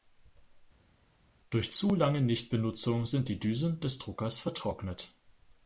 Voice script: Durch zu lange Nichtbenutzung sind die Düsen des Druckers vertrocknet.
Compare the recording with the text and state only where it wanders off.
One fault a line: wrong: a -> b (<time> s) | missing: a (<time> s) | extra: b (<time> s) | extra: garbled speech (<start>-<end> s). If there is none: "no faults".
no faults